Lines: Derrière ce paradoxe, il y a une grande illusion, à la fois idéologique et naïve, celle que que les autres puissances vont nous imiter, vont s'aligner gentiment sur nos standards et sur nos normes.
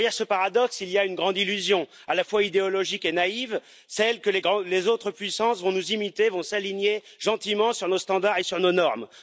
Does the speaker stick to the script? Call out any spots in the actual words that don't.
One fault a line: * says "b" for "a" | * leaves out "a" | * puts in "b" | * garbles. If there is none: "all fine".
* leaves out "que"